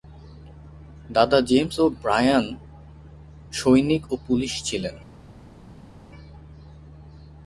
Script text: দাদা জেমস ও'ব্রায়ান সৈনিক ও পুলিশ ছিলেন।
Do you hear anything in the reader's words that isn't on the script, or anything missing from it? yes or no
no